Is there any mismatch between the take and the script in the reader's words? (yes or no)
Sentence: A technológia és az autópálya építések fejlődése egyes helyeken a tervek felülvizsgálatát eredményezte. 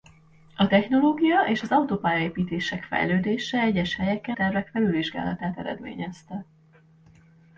yes